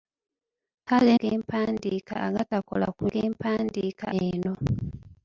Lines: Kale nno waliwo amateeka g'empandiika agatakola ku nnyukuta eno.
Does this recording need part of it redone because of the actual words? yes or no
yes